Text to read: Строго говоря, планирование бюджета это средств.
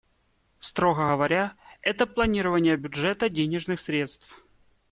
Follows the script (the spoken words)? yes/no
no